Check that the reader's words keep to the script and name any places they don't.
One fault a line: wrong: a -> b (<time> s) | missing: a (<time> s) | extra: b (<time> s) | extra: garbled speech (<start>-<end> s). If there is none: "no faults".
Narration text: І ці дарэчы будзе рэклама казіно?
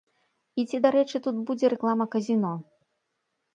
extra: тут (1.2 s)